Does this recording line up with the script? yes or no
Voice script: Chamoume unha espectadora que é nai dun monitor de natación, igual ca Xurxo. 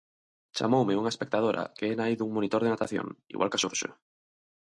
yes